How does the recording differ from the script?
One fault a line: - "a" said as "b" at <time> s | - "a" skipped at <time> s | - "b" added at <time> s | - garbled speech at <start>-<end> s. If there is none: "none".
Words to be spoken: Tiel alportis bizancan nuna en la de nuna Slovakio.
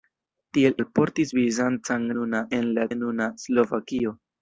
none